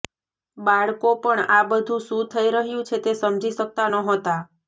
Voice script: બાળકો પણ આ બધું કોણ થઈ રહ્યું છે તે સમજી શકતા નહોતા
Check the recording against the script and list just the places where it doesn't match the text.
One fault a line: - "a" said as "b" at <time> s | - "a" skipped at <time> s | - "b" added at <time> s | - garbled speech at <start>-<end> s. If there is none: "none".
- "કોણ" said as "શું" at 2.0 s